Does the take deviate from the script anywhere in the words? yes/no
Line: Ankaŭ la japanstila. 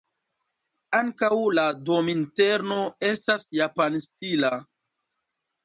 yes